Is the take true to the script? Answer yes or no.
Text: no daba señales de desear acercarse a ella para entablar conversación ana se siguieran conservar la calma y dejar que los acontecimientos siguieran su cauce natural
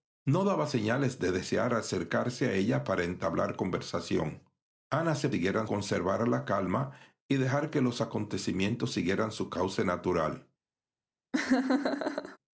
yes